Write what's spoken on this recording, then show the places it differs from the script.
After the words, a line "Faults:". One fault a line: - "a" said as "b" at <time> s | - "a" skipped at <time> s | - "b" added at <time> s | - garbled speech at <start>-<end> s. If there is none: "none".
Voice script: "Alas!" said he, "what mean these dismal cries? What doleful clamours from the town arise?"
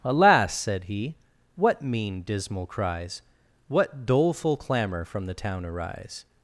"Alas!" said he, "what mean dismal cries? What doleful clamour from the town arise?"
Faults:
- "these" skipped at 2.2 s
- "clamours" said as "clamour" at 4.5 s